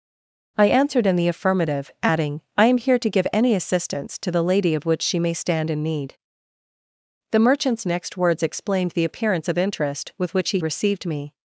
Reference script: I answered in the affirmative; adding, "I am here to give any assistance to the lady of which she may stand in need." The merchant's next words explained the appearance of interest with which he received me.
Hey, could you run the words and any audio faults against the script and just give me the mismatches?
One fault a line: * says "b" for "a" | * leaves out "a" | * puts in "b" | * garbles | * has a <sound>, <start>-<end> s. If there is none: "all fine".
all fine